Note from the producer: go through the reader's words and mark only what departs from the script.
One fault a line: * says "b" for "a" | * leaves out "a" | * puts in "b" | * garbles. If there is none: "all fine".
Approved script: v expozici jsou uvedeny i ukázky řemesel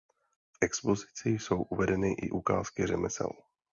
all fine